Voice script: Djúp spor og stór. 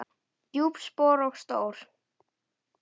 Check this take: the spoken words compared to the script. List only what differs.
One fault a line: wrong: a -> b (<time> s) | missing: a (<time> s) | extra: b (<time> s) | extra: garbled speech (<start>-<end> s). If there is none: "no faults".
no faults